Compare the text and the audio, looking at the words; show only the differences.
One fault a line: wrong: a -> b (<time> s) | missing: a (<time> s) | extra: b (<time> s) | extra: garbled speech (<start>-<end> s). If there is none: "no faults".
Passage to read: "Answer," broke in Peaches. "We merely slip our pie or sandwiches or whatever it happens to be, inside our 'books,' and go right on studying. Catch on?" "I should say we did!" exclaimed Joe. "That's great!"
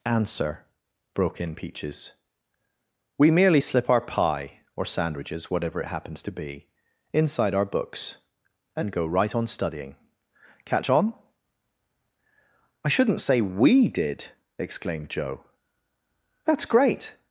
missing: or (5.5 s)
wrong: should -> shouldn't (12.9 s)